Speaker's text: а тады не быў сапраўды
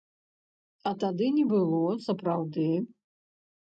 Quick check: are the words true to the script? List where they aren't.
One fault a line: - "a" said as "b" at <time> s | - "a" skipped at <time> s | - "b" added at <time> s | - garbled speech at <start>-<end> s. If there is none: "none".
- "быў" said as "было" at 1.5 s